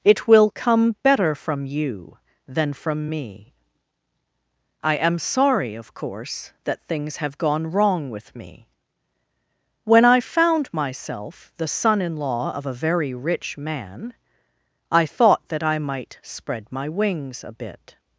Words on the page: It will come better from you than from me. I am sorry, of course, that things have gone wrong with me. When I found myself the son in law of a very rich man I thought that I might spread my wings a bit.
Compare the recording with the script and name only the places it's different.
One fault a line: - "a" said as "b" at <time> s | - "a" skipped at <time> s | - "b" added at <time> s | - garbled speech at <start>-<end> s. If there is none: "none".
none